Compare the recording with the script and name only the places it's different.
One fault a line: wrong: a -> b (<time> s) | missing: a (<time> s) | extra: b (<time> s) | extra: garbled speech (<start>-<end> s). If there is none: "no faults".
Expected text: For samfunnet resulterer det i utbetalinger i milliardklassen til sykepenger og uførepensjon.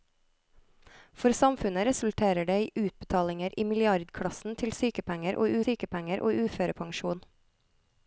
extra: sykepenger og (5.7 s)